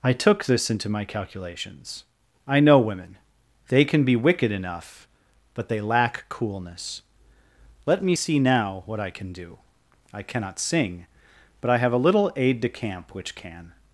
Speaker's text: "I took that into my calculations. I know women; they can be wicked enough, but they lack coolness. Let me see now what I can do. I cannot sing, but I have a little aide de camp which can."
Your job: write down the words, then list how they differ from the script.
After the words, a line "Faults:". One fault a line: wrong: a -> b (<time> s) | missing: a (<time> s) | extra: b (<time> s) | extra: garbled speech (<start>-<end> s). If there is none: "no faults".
"I took this into my calculations. I know women; they can be wicked enough, but they lack coolness. Let me see now what I can do. I cannot sing, but I have a little aide de camp which can."
Faults:
wrong: that -> this (0.5 s)